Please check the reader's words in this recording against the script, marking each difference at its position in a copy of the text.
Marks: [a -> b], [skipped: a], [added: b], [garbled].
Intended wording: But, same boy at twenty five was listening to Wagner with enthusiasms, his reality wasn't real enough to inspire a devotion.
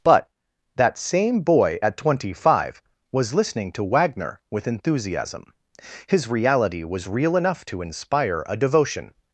But, [added: that] same boy at twenty five was listening to Wagner with [enthusiasms, -> enthusiasm] his reality [wasn't -> was] real enough to inspire a devotion.